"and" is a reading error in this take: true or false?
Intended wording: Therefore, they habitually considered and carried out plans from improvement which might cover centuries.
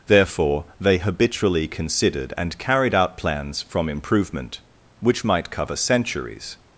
false